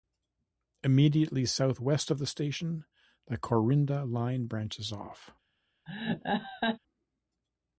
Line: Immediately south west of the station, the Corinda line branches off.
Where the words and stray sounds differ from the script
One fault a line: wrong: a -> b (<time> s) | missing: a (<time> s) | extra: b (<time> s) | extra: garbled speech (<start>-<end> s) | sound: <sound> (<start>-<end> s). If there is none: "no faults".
sound: laugh (5.9-6.8 s)